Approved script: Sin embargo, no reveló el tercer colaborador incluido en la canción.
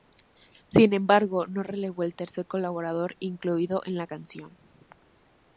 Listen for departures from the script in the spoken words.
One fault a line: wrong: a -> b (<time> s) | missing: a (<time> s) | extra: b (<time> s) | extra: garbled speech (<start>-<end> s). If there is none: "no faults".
no faults